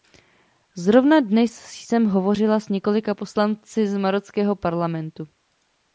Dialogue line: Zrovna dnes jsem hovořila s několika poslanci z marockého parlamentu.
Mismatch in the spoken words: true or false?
false